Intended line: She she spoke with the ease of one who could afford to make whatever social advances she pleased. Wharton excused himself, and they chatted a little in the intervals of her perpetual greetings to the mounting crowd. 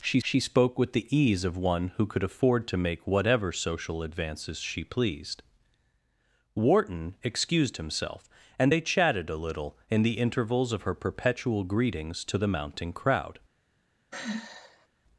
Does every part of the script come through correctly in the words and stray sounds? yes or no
no